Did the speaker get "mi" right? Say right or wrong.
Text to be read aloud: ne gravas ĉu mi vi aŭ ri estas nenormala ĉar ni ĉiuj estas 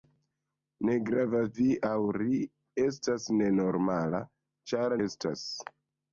wrong